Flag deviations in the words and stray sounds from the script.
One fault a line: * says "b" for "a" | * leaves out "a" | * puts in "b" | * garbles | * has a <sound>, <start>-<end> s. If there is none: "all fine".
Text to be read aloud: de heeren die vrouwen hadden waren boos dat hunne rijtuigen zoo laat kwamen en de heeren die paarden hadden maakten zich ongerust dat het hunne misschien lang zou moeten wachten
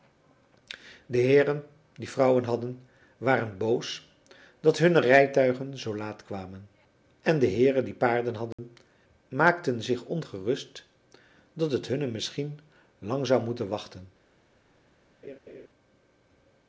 * has a dropout, 8.5-8.6 s
* has a laugh, 15.2-15.7 s